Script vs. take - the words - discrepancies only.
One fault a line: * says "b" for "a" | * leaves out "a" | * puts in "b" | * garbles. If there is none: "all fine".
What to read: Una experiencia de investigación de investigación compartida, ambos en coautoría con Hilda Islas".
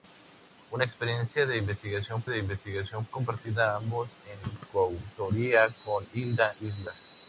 all fine